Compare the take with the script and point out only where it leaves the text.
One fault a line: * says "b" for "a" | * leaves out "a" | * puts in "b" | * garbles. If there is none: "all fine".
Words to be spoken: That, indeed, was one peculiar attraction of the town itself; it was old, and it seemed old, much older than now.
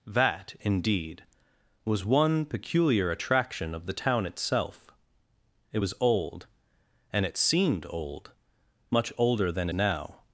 all fine